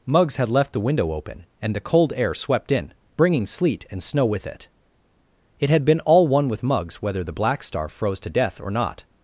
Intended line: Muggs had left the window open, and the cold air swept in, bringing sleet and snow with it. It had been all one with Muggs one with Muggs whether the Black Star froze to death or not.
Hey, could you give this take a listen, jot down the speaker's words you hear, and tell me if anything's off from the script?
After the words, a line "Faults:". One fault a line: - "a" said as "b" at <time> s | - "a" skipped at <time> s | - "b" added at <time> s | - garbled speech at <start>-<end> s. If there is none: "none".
Muggs had left the window open, and the cold air swept in, bringing sleet and snow with it. It had been all one with Muggs whether the Black Star froze to death or not.
Faults:
- "one with Muggs" skipped at 7.0 s